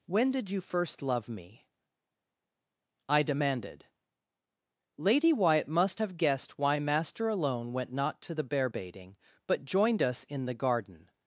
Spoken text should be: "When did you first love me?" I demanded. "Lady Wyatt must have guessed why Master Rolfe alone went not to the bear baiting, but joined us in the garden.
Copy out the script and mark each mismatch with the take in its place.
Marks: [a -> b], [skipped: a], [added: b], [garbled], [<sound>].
"When did you first love me?" I demanded. "Lady Wyatt must have guessed why Master [skipped: Rolfe] alone went not to the bear baiting, but joined us in the garden.